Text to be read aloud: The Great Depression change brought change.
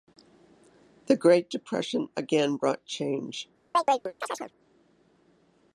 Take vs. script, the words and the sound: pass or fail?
fail